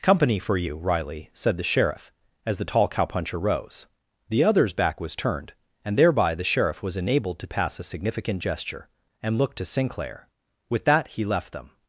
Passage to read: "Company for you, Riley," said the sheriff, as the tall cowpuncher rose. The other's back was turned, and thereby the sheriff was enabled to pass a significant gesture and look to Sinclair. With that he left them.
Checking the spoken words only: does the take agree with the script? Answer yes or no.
yes